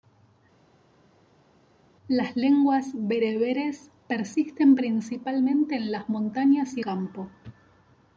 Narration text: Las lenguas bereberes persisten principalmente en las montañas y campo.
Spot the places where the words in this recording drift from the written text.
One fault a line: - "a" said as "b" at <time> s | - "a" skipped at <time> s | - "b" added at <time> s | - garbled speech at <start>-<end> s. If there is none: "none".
none